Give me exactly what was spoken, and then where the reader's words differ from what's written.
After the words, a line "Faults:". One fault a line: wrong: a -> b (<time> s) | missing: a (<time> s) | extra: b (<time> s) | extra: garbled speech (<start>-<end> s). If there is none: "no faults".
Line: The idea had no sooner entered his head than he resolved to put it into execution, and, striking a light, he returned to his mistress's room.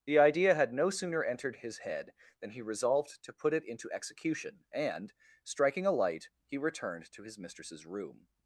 The idea had no sooner entered his head than he resolved to put it into execution, and, striking a light, he returned to his mistress's room.
Faults:
no faults